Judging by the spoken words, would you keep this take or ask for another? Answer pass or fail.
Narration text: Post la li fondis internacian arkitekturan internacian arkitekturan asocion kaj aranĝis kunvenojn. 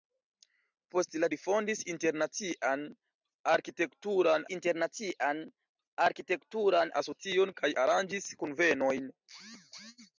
pass